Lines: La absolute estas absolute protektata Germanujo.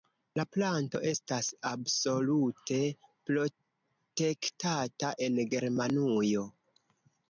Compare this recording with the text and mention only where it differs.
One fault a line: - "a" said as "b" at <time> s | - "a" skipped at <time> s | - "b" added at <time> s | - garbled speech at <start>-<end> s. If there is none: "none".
- "absolute" said as "planto" at 0.6 s
- "en" added at 5.3 s